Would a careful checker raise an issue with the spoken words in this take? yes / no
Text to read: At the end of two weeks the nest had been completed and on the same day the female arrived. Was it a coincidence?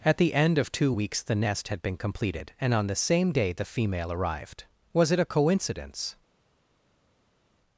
no